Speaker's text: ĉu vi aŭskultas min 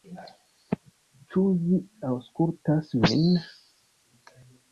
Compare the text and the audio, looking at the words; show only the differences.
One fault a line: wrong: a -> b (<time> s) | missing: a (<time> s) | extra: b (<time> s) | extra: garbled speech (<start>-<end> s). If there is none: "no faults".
no faults